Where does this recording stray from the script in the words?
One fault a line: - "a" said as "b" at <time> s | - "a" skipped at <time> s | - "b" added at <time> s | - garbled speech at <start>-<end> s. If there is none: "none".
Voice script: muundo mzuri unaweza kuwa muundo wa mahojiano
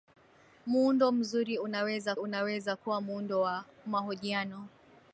- "unaweza" added at 2.2 s